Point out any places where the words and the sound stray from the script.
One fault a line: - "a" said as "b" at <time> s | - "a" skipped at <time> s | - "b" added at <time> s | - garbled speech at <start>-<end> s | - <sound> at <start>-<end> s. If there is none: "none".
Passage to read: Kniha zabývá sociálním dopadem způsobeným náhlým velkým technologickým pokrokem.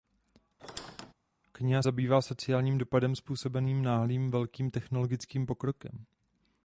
- squeak at 0.6-1.1 s